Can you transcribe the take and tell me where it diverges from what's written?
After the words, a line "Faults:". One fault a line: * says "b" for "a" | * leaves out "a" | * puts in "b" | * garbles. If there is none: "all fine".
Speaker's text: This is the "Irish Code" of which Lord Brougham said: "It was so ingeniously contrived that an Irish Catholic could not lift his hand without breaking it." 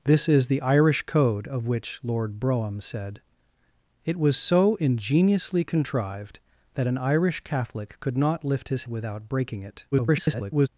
This is the "Irish Code" of which Lord Brougham said: "It was so ingeniously contrived that an Irish Catholic could not lift his without breaking it." [garbled]
Faults:
* leaves out "hand"
* garbles